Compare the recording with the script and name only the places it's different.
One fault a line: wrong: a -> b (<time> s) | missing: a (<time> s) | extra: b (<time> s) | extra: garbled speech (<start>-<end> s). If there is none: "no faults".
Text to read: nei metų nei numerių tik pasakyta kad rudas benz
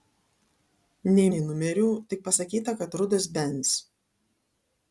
missing: metų (1.2 s)